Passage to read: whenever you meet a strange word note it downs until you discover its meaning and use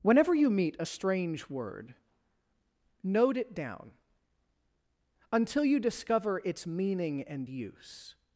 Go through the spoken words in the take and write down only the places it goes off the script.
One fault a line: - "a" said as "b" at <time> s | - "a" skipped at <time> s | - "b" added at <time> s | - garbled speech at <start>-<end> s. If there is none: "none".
- "downs" said as "down" at 3.5 s